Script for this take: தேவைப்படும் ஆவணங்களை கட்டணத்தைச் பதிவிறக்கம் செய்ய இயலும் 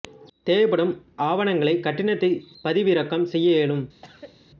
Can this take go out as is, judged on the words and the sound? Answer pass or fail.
fail